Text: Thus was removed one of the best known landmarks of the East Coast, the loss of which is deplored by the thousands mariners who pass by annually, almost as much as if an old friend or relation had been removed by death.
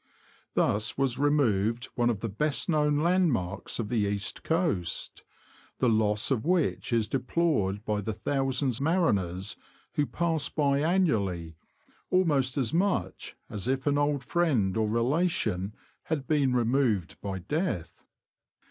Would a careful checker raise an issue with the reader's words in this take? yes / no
no